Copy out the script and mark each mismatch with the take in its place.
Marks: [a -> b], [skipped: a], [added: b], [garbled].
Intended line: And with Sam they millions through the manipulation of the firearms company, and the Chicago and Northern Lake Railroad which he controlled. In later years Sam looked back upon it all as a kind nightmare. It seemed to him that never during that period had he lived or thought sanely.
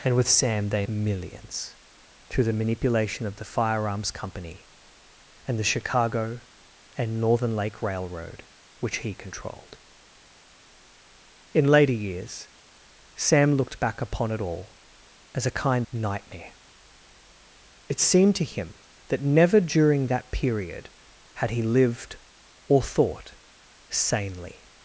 And with Sam they millions through the manipulation of the firearms company, and the Chicago and Northern Lake Railroad which he controlled. In later years Sam looked back upon it all as a kind nightmare. It seemed to him that never during that period had he lived or thought sanely.